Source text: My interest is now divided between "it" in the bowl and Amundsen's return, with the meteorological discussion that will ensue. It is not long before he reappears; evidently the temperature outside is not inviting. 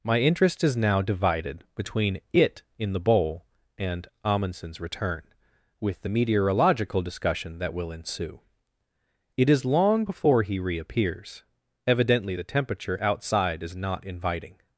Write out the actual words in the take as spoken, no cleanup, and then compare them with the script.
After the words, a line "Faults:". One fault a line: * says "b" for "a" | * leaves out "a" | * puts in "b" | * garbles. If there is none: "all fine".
My interest is now divided between "it" in the bowl and Amundsen's return, with the meteorological discussion that will ensue. It is long before he reappears; evidently the temperature outside is not inviting.
Faults:
* leaves out "not"